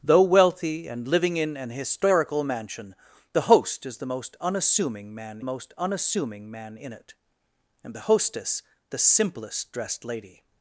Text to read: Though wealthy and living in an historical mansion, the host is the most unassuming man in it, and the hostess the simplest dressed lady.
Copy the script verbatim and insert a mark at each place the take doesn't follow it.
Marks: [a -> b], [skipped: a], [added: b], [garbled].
Though wealthy and living in an historical mansion, the host is the most unassuming man [added: most unassuming man] in it, and the hostess the simplest dressed lady.